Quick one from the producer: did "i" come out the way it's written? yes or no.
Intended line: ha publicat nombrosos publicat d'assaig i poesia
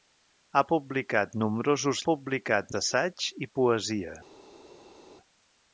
yes